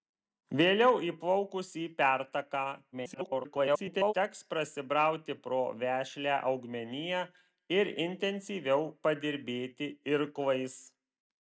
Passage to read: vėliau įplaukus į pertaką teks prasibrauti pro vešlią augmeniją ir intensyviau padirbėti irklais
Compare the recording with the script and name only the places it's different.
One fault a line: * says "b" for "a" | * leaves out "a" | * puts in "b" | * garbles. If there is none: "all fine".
* garbles